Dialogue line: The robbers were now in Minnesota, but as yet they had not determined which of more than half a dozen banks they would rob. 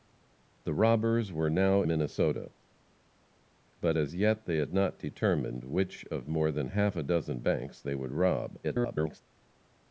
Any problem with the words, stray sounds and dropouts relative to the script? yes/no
yes